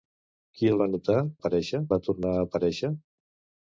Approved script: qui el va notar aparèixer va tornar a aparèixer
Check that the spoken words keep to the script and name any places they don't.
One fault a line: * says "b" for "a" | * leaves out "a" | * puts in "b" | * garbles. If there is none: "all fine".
all fine